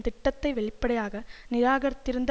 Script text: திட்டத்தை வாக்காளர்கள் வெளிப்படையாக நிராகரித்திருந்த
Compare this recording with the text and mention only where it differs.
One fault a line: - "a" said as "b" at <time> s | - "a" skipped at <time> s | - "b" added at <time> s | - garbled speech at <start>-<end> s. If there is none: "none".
- "வாக்காளர்கள்" skipped at 0.5 s